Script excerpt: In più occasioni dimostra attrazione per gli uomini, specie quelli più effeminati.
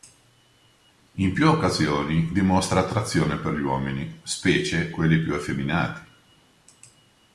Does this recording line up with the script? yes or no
yes